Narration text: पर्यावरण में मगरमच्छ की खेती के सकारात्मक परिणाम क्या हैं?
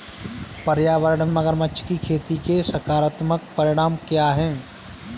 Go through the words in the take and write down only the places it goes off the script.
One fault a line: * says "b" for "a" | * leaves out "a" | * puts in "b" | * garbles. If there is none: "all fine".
* leaves out "में"